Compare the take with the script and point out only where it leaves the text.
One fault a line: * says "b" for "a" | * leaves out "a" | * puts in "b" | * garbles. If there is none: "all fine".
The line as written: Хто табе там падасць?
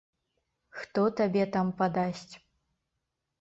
all fine